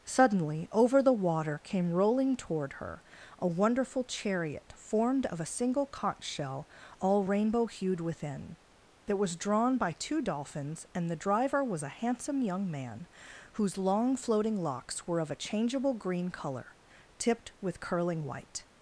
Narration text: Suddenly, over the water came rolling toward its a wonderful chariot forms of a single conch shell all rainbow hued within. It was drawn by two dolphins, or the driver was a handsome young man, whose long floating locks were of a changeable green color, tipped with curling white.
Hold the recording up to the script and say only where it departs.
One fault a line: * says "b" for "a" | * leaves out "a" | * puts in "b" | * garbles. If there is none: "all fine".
* says "her" for "its"
* says "formed" for "forms"
* says "and" for "or"